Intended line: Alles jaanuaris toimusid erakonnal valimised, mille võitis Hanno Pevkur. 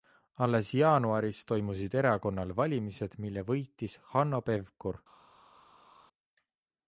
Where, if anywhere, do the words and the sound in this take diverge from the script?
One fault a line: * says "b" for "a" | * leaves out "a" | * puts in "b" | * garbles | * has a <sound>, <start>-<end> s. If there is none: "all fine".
all fine